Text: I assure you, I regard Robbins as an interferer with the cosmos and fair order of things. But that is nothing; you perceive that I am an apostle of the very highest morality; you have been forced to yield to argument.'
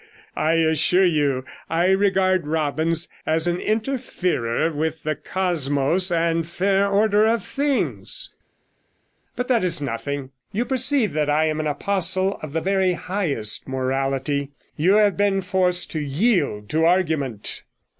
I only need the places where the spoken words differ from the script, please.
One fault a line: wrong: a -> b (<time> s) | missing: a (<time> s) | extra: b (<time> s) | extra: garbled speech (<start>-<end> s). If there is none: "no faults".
no faults